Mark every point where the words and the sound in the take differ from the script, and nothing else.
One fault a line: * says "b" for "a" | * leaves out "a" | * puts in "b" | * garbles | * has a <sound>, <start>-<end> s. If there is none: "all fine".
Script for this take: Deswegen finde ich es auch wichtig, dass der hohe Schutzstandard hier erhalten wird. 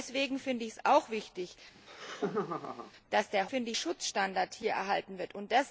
* has a laugh, 1.7-2.9 s
* says "finde" for "hohe"